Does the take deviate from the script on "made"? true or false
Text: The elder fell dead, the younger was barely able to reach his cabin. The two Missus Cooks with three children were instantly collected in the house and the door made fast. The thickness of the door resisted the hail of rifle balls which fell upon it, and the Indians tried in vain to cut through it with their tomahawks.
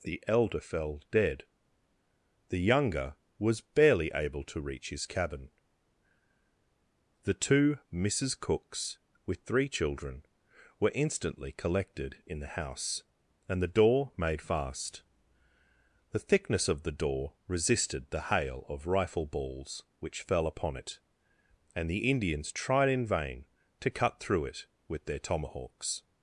false